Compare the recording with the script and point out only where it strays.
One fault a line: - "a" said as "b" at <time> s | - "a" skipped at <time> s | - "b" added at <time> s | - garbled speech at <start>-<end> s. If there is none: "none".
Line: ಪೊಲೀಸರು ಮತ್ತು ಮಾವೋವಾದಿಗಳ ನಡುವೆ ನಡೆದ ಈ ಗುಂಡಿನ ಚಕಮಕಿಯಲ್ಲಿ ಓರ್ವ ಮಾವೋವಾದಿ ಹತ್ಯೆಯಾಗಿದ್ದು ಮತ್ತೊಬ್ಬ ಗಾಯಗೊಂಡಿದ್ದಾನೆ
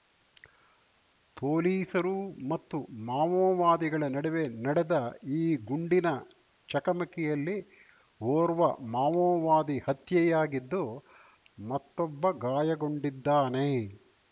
none